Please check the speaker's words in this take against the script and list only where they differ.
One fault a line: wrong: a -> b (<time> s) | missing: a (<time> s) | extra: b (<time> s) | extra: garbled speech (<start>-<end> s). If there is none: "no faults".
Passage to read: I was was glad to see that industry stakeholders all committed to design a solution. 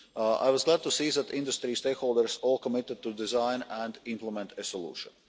missing: was (0.6 s)
extra: and implement (3.7 s)